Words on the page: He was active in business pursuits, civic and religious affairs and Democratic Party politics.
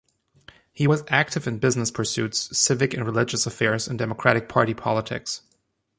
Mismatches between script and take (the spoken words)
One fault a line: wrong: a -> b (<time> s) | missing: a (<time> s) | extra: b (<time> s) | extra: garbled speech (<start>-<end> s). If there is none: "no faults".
no faults